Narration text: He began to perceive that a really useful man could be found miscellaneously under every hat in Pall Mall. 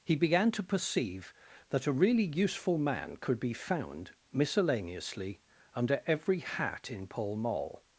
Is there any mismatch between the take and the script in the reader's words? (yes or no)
no